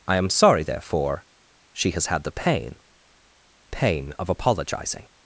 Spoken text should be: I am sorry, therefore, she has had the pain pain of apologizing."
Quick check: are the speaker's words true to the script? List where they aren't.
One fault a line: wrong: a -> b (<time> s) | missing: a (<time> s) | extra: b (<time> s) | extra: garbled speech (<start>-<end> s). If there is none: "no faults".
no faults